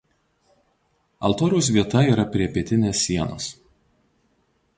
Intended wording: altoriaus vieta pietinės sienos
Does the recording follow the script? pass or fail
fail